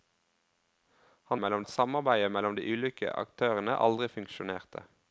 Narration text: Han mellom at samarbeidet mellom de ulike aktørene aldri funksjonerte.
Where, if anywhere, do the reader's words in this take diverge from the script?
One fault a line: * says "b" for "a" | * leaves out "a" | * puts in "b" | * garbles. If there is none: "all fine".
all fine